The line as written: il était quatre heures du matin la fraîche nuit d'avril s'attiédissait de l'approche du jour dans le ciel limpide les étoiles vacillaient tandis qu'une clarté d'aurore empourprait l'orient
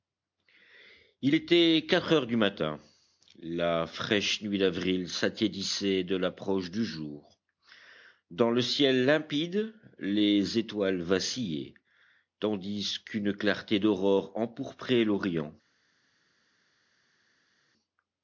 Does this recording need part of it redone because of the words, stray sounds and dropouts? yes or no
no